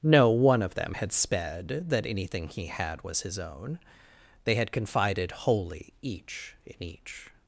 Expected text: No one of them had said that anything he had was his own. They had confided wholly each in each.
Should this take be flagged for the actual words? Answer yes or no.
yes